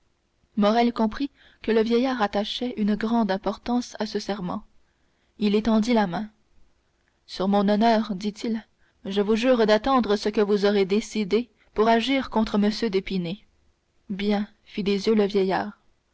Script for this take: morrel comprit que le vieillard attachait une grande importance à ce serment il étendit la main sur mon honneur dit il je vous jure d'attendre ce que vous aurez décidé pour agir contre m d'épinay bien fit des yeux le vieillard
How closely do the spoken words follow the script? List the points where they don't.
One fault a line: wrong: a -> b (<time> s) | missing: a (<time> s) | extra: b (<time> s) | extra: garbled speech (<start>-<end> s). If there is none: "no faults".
no faults